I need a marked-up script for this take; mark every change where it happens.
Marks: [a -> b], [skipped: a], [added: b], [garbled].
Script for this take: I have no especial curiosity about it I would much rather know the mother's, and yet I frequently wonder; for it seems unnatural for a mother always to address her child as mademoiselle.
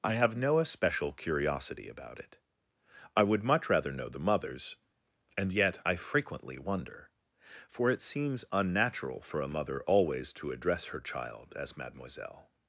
I have no especial curiosity about it I would much rather know the mother's, and yet I frequently wonder; for it seems unnatural for a mother always to address her child as mademoiselle.